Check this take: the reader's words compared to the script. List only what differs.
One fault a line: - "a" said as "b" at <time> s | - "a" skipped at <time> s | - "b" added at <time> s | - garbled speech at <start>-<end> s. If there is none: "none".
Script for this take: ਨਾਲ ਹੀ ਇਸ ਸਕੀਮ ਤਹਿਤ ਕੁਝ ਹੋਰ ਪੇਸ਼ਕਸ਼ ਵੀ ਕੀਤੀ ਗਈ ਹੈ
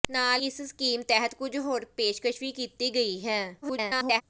- "ਹੀ" skipped at 0.4 s
- garbled speech at 3.6-4.2 s